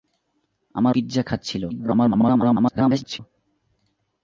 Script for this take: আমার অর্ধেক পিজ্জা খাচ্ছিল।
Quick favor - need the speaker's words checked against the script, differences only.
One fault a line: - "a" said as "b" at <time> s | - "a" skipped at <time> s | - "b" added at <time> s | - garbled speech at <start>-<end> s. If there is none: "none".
- "অর্ধেক" skipped at 0.9 s
- garbled speech at 1.7-3.2 s